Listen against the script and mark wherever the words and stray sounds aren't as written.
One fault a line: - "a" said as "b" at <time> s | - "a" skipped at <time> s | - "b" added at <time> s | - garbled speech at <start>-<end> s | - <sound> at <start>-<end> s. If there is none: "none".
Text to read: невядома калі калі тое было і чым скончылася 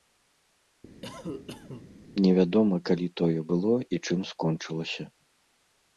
- cough at 1.0-1.9 s
- "калі" skipped at 3.1 s